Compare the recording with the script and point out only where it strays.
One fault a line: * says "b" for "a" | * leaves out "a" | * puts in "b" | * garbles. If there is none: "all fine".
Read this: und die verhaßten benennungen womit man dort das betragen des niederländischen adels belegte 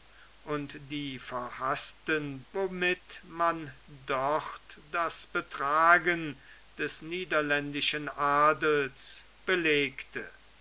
* leaves out "benennungen"